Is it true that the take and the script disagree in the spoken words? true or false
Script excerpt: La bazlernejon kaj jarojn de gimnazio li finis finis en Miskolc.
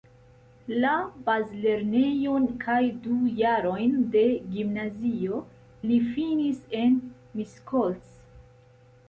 true